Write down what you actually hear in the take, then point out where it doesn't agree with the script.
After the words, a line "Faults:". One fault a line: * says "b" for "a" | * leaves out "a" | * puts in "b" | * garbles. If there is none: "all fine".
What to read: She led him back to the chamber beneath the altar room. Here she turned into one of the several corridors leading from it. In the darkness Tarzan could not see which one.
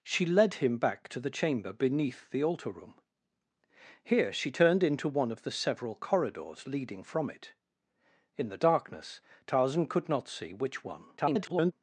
She led him back to the chamber beneath the altar room. Here she turned into one of the several corridors leading from it. In the darkness Tarzan could not see which one. [garbled]
Faults:
* garbles